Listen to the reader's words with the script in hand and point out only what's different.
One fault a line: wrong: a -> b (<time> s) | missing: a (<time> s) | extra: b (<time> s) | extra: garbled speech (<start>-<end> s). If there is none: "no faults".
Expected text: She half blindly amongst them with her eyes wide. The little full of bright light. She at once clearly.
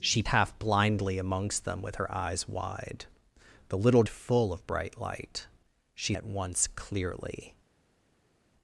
no faults